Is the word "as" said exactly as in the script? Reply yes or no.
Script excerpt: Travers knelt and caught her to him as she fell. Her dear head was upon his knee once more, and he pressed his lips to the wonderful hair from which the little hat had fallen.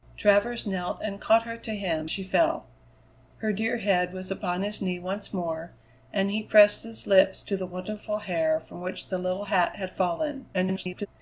no